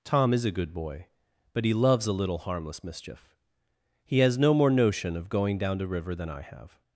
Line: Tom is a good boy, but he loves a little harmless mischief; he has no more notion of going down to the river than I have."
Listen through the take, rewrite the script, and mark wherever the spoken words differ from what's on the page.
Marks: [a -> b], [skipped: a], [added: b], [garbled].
Tom is a good boy, but he loves a little harmless mischief; he has no more notion of going down to [skipped: the] river than I have."